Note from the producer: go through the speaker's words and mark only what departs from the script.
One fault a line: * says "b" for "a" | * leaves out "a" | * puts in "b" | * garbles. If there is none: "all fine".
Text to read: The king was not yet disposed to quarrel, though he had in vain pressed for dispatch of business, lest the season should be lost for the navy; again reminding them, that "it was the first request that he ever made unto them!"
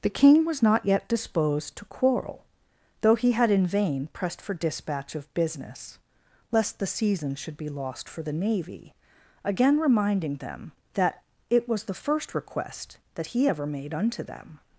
all fine